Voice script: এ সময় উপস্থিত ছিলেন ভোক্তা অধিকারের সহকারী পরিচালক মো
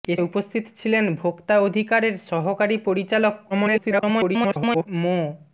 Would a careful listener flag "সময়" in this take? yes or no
yes